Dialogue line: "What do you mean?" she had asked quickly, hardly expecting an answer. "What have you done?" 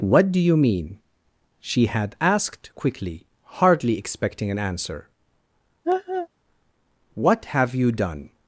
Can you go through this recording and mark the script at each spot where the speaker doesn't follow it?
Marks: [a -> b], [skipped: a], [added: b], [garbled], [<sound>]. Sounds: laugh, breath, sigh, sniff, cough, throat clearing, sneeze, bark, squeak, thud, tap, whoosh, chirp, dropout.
"What do you mean?" she had asked quickly, hardly expecting an answer. [laugh] "What have you done?"